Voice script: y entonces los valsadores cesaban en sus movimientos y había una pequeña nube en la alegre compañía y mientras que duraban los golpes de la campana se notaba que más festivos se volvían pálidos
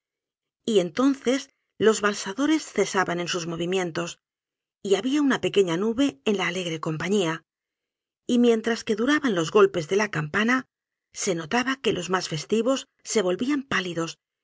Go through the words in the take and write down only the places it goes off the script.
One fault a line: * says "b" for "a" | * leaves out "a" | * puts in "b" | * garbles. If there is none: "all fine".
* puts in "los"